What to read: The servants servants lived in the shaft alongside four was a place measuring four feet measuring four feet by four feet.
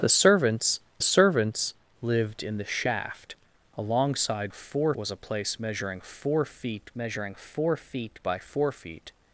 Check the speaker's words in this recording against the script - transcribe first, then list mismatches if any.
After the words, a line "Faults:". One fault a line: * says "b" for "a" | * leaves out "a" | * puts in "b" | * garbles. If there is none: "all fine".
The servants servants lived in the shaft alongside four was a place measuring four feet measuring four feet by four feet.
Faults:
all fine